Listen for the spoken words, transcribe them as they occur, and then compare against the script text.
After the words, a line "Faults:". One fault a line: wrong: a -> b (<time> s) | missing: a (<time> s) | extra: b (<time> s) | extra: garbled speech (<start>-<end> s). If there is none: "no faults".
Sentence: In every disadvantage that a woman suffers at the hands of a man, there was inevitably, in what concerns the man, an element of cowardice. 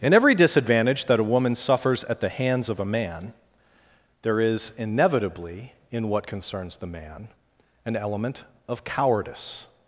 In every disadvantage that a woman suffers at the hands of a man, there is inevitably, in what concerns the man, an element of cowardice.
Faults:
wrong: was -> is (4.4 s)